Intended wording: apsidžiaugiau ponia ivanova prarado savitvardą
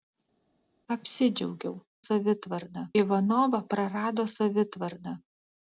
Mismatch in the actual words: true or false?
true